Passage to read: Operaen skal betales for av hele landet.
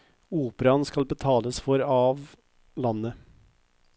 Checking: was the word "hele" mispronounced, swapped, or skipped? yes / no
yes